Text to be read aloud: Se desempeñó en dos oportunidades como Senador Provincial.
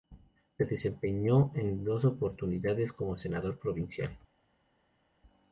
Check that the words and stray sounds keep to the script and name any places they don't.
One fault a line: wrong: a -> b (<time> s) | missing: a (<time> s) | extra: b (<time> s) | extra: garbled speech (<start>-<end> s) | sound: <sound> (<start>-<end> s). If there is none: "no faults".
no faults